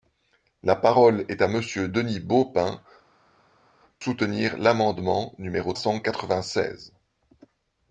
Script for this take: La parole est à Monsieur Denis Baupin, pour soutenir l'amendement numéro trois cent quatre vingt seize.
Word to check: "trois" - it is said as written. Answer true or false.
false